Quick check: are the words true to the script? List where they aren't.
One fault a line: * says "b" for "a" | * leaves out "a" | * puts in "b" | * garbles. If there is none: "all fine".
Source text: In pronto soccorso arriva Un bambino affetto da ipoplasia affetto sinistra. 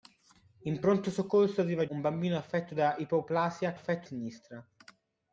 all fine